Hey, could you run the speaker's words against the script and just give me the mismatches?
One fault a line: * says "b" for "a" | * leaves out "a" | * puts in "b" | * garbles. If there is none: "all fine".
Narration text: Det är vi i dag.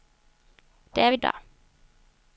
all fine